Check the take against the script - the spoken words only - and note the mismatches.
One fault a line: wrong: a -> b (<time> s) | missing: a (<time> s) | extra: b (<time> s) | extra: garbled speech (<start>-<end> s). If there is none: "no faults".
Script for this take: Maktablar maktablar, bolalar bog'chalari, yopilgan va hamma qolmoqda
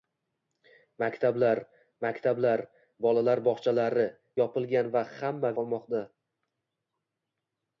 no faults